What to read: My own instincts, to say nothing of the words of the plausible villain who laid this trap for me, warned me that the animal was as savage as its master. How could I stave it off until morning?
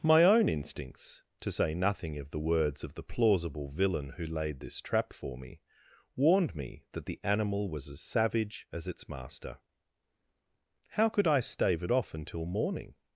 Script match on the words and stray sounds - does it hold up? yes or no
yes